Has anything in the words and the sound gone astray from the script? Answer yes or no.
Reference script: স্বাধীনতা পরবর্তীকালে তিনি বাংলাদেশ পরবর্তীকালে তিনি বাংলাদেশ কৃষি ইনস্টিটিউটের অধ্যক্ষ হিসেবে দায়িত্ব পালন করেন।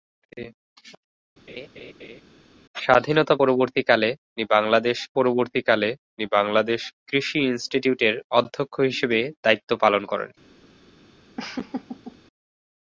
yes